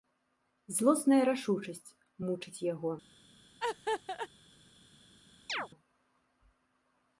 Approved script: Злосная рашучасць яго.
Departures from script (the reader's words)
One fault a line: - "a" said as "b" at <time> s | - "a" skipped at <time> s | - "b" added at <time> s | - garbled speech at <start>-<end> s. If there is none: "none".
- "мучыць" added at 2.3 s